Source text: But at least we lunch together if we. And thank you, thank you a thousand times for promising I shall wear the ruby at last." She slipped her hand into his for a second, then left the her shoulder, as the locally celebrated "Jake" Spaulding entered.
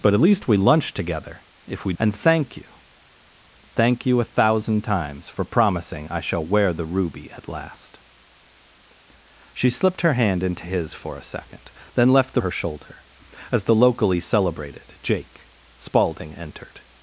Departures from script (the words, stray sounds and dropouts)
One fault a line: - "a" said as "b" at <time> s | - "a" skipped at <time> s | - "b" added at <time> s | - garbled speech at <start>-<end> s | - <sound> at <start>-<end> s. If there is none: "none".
none